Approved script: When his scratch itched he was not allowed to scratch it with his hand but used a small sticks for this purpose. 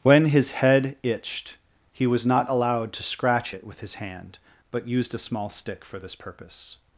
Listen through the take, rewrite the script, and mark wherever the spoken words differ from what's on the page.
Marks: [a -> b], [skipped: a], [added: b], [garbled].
When his [scratch -> head] itched he was not allowed to scratch it with his hand but used a small [sticks -> stick] for this purpose.